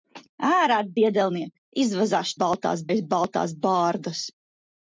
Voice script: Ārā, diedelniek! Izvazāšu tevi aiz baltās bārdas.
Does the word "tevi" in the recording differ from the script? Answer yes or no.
yes